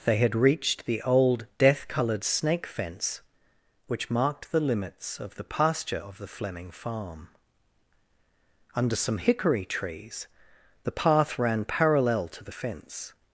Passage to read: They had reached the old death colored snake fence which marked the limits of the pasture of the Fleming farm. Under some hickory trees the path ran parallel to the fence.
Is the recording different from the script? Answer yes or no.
no